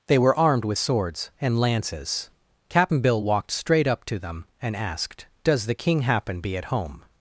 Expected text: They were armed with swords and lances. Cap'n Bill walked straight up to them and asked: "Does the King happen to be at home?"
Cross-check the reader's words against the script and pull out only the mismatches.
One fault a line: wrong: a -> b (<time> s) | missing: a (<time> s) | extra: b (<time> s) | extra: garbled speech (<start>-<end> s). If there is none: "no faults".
missing: to (6.4 s)